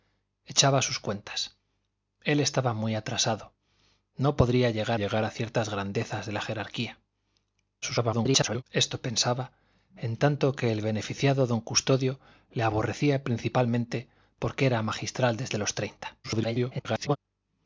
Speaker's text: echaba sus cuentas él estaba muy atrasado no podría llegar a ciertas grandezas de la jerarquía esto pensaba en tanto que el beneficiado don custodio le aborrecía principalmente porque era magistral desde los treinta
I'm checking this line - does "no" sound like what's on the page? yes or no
yes